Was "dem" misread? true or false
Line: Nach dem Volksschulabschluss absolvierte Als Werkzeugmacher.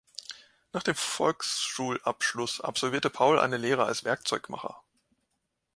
false